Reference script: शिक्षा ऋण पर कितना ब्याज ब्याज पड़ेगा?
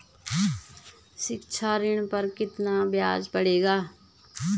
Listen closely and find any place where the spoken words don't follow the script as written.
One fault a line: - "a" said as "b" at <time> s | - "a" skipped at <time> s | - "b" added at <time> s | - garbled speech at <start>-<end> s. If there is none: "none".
- "ब्याज" skipped at 3.3 s